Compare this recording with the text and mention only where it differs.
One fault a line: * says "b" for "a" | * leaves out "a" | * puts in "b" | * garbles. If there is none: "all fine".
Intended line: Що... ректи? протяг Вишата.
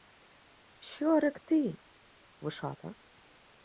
* leaves out "протяг"